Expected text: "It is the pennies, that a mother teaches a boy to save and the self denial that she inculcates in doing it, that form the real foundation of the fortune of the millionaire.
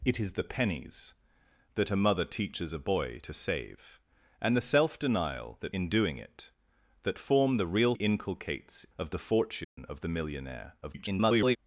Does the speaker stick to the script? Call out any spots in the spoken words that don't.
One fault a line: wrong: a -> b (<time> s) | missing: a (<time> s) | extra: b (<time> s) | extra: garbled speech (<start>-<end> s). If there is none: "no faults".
missing: she inculcates (5.7 s)
wrong: foundation -> inculcates (7.9 s)
extra: garbled speech (10.8-11.6 s)